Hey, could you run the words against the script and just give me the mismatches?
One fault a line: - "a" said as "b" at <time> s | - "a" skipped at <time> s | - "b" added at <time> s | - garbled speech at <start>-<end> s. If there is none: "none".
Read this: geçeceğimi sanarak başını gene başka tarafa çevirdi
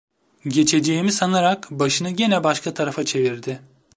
none